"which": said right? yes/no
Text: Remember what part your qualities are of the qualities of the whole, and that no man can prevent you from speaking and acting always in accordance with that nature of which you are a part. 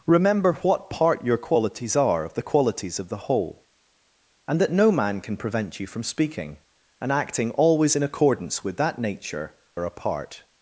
no